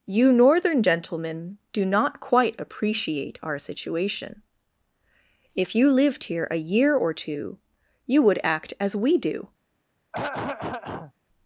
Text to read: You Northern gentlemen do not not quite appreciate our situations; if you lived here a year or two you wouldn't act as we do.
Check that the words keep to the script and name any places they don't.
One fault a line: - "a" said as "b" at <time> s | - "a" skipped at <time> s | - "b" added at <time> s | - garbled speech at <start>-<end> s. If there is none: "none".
- "not" skipped at 2.2 s
- "situations" said as "situation" at 3.6 s
- "wouldn't" said as "would" at 8.2 s